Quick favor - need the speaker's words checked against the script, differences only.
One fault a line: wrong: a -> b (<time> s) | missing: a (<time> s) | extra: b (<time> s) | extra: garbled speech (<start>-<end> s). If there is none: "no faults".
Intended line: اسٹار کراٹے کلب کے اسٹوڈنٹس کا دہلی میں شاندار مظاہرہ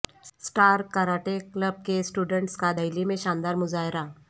no faults